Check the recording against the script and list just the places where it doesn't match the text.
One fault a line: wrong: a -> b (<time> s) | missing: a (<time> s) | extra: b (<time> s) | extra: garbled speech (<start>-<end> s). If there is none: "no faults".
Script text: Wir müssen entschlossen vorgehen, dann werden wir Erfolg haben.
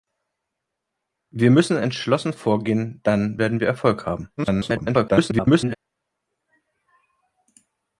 extra: garbled speech (4.4-5.8 s)